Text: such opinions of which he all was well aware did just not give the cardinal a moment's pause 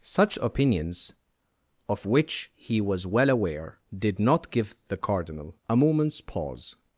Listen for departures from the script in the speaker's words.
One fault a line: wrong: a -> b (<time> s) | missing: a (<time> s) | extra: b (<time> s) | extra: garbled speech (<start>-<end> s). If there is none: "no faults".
missing: all (2.8 s)
missing: just (4.2 s)